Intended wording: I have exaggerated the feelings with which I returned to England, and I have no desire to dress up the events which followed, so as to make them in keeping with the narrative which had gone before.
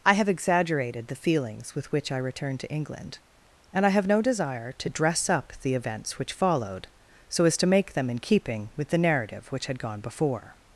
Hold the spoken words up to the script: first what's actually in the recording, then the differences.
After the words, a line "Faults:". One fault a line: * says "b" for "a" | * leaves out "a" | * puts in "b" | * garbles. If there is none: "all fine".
I have exaggerated the feelings with which I returned to England, and I have no desire to dress up the events which followed, so as to make them in keeping with the narrative which had gone before.
Faults:
all fine